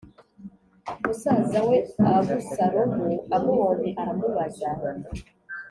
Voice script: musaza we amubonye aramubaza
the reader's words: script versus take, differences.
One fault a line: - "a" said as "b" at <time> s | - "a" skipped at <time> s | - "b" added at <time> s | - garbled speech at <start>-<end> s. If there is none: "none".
- "abusalomu" added at 2.1 s